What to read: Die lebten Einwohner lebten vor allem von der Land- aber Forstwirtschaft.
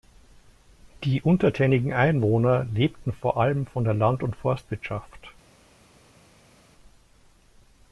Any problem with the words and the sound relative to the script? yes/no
yes